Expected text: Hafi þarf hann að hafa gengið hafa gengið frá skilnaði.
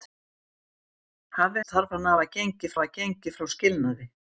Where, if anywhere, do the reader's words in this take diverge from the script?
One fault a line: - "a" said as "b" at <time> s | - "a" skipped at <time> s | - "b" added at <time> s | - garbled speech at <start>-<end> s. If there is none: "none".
none